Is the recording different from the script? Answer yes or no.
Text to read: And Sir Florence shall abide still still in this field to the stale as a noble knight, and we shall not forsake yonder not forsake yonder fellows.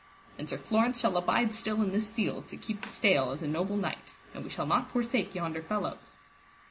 yes